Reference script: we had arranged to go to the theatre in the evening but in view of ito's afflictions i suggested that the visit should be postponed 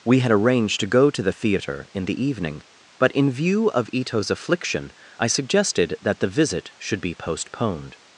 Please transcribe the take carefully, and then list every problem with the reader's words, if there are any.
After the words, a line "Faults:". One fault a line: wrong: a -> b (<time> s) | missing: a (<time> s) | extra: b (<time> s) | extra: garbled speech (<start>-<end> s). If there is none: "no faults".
we had arranged to go to the theatre in the evening but in view of ito's affliction i suggested that the visit should be postponed
Faults:
wrong: afflictions -> affliction (4.3 s)